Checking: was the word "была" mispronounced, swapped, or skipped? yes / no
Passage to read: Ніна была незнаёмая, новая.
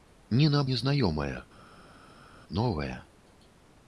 yes